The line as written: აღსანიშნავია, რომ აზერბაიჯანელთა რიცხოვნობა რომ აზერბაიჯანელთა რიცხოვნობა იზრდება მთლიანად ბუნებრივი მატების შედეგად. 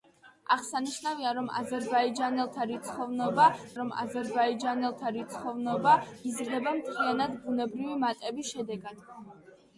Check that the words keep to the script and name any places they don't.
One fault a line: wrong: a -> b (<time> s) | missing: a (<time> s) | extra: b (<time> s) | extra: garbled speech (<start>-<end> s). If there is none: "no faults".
no faults